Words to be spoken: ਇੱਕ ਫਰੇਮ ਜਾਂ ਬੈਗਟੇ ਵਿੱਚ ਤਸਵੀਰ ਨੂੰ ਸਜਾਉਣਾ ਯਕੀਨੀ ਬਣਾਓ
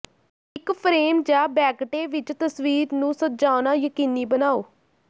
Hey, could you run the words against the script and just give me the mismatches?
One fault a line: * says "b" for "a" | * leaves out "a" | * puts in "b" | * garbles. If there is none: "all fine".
all fine